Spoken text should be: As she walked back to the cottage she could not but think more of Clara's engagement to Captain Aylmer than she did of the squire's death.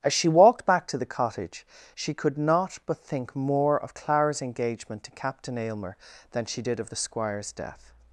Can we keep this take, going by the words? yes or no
yes